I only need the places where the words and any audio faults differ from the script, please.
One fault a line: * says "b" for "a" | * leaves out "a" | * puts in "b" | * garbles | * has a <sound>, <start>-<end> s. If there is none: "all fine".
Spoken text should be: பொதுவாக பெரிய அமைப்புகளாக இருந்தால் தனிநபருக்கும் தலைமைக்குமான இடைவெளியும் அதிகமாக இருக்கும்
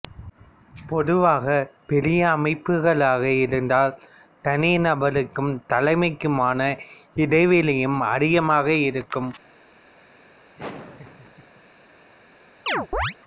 * has a laugh, 10.6-11.6 s
* has a chirp, 12.7-13.1 s